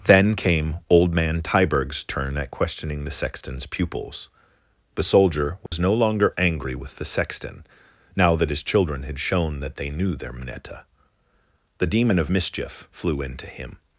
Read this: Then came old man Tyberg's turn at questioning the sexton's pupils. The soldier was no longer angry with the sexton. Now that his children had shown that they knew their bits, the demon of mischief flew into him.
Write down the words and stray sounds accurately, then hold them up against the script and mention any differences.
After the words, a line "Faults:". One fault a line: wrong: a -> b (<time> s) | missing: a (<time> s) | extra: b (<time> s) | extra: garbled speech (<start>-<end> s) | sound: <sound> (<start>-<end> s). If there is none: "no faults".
Then came old man Tyberg's turn at questioning the sexton's pupils. The soldier was no longer angry with the sexton. Now that his children had shown that they knew their mneta, the demon of mischief flew into him.
Faults:
sound: dropout (5.7-5.7 s)
wrong: bits -> mneta (10.3 s)